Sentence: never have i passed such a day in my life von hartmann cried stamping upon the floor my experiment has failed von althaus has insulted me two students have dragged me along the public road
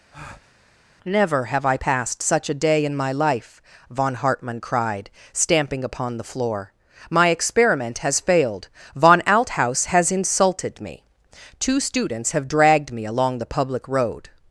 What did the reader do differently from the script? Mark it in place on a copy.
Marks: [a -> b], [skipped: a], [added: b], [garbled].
never have i passed such a day in my life von hartmann cried stamping upon the floor my experiment has failed von althaus has insulted me two students have dragged me along the public road